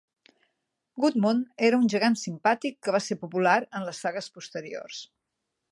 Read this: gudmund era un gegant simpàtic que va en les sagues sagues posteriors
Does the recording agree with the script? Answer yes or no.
no